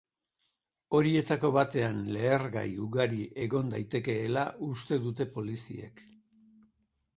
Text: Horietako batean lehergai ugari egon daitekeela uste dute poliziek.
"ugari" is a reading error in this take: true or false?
false